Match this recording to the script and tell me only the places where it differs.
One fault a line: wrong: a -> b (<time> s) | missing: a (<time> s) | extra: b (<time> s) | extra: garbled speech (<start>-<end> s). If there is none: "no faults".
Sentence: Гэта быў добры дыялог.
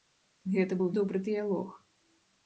no faults